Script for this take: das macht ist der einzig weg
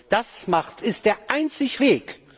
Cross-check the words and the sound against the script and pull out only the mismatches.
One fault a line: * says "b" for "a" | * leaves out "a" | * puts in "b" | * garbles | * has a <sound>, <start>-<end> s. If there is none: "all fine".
all fine